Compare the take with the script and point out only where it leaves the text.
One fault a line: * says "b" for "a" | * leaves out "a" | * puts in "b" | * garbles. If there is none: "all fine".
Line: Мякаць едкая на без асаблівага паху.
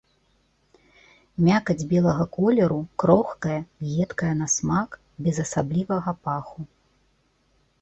* puts in "белага колеру крохкая"
* puts in "смак"